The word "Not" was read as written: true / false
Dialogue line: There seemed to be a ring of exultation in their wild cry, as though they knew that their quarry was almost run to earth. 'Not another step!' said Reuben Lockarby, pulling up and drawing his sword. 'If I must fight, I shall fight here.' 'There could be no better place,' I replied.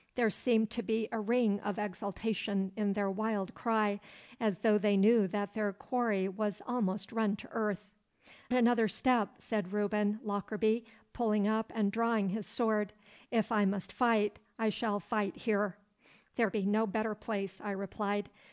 false